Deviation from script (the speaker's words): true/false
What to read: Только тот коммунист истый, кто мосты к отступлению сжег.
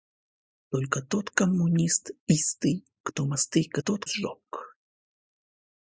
true